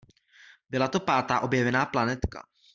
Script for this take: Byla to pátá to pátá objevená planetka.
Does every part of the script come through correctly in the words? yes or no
no